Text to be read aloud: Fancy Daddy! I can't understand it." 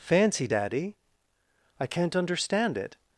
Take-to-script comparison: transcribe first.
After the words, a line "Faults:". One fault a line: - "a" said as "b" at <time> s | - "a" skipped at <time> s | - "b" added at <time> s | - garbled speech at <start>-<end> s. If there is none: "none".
Fancy Daddy! I can't understand it."
Faults:
none